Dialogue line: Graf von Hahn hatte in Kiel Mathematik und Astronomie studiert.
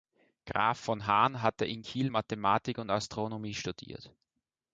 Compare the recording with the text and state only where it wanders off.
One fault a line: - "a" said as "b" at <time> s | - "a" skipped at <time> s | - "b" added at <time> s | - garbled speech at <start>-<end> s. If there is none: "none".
none